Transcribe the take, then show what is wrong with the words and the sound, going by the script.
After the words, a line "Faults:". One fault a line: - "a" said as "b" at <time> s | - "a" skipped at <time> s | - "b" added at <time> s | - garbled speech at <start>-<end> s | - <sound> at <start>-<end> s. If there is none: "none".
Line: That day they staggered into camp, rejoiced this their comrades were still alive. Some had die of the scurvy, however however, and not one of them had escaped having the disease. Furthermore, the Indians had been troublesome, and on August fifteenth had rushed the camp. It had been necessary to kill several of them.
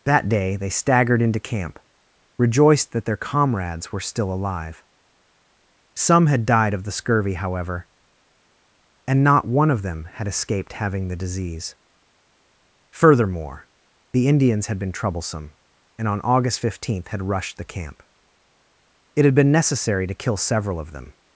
That day they staggered into camp, rejoiced that their comrades were still alive. Some had died of the scurvy, however, and not one of them had escaped having the disease. Furthermore, the Indians had been troublesome, and on August fifteenth had rushed the camp. It had been necessary to kill several of them.
Faults:
- "this" said as "that" at 2.9 s
- "die" said as "died" at 6.5 s
- "however" skipped at 7.9 s